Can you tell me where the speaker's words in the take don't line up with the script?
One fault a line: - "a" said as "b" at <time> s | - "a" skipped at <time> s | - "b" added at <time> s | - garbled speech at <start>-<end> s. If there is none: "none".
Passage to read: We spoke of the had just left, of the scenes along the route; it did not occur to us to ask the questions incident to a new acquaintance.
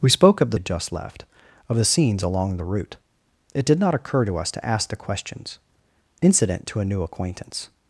none